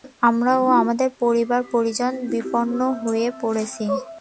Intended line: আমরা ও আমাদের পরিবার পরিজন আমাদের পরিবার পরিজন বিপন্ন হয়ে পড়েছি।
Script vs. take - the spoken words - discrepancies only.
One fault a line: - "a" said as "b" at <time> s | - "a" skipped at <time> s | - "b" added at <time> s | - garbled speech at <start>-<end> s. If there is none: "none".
- "আমাদের পরিবার পরিজন" skipped at 2.1 s